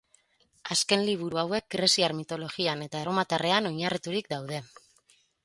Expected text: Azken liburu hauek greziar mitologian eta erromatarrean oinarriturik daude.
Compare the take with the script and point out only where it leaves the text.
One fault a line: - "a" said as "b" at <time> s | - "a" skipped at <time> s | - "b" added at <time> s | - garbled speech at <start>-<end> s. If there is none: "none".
none